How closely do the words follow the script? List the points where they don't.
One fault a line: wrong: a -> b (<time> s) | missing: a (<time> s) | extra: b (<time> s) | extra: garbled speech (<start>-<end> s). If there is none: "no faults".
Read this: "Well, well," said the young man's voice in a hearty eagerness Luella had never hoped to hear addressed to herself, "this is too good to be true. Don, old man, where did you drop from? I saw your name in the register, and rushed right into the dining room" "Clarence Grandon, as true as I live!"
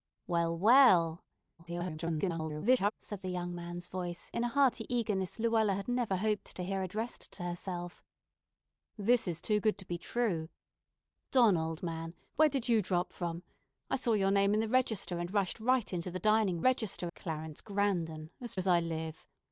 extra: garbled speech (1.6-2.9 s)
wrong: room -> register (16.6 s)
missing: true (18.6 s)